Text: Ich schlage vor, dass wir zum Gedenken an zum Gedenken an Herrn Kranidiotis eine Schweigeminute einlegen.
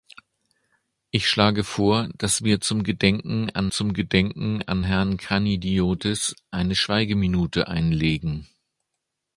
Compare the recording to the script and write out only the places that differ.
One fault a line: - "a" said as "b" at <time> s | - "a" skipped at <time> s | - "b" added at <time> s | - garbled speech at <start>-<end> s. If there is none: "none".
none